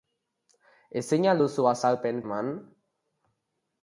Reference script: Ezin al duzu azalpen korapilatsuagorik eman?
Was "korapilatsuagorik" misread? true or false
true